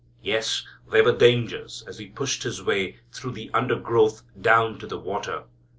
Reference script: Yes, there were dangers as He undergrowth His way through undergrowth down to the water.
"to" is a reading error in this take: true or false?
false